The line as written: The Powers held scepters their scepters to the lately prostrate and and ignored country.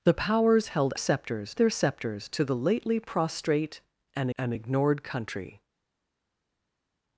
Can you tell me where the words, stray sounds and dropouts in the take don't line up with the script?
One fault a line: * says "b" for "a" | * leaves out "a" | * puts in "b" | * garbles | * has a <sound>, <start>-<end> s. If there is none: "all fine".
all fine